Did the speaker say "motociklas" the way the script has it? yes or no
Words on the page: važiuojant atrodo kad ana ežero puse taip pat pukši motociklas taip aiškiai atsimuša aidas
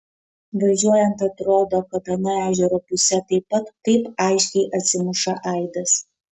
no